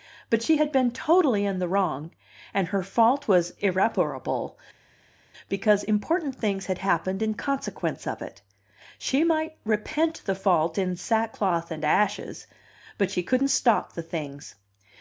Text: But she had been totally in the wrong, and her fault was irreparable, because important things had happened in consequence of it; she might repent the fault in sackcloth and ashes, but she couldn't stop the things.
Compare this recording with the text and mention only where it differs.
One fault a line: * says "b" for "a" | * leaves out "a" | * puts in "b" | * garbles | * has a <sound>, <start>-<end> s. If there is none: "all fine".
all fine